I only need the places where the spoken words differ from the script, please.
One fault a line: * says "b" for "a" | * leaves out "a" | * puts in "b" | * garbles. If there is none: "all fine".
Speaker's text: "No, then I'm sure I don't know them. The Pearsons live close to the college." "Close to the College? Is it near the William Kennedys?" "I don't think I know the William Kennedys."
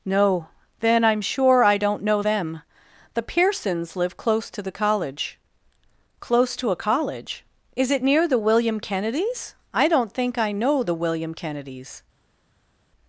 * says "a" for "the"